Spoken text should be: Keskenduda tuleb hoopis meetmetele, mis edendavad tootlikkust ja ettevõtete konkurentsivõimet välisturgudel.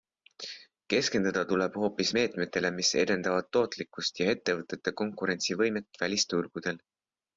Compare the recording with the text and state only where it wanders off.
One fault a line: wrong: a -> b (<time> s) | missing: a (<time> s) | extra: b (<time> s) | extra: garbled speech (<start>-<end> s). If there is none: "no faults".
no faults